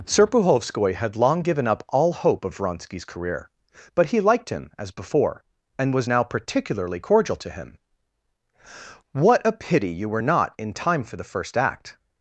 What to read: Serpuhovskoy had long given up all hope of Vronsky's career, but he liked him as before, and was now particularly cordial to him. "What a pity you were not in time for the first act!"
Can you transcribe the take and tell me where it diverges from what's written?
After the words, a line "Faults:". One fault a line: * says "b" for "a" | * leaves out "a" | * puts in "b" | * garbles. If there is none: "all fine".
Serpuhovskoy had long given up all hope of Vronsky's career, but he liked him as before, and was now particularly cordial to him. "What a pity you were not in time for the first act!"
Faults:
all fine